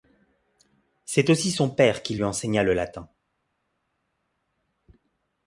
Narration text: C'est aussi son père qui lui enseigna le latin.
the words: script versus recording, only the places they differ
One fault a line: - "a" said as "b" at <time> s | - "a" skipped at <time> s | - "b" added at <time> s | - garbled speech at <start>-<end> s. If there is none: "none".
none